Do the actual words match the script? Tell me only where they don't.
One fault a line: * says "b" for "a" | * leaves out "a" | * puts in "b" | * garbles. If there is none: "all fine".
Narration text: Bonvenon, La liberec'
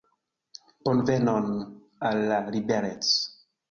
* puts in "Al"